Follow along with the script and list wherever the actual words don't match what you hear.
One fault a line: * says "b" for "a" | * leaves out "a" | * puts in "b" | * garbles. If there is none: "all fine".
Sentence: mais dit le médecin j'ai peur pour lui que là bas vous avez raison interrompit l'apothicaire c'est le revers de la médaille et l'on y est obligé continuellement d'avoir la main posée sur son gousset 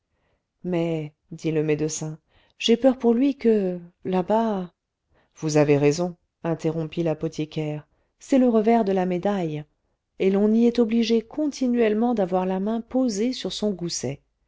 all fine